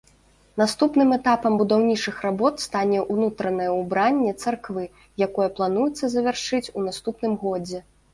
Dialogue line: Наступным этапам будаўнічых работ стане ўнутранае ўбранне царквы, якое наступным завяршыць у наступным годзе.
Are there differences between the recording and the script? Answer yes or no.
yes